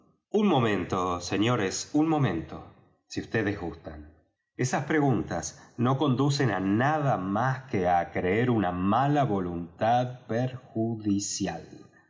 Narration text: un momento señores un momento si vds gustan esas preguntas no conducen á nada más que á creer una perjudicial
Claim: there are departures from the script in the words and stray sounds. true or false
true